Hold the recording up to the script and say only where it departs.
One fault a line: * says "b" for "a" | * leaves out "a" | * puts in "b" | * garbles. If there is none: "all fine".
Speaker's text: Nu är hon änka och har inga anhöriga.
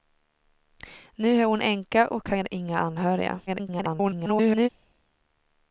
* garbles